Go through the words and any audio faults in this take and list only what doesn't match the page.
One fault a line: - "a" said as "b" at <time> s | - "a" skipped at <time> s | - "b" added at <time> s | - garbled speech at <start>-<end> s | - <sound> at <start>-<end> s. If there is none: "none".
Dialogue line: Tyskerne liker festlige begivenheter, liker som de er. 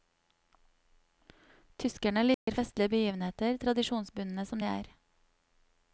- dropout at 2.3-2.5 s
- "liker" said as "tradisjonsbundne" at 3.6 s